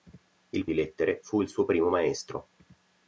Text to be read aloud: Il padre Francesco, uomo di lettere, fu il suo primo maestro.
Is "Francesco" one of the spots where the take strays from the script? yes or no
yes